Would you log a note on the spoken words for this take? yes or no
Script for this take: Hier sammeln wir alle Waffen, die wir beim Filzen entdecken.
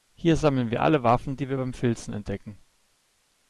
no